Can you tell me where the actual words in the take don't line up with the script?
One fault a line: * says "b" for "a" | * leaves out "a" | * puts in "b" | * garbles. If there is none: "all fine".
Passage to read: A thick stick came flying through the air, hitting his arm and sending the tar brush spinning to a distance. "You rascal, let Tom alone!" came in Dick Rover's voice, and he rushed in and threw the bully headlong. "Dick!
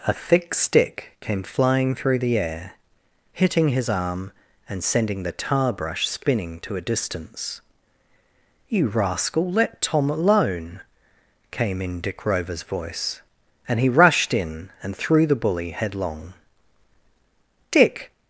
all fine